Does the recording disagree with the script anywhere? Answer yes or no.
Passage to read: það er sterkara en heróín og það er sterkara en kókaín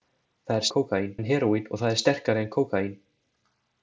yes